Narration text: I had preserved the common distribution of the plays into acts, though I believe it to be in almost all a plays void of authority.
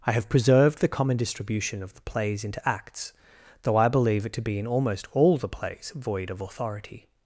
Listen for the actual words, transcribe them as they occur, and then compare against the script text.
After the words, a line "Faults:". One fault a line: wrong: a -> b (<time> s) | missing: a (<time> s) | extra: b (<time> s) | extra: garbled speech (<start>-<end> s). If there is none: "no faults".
I have preserved the common distribution of the plays into acts, though I believe it to be in almost all the plays void of authority.
Faults:
wrong: had -> have (0.1 s)
wrong: a -> the (5.4 s)